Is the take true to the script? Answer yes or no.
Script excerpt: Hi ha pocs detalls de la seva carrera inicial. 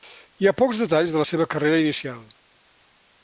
yes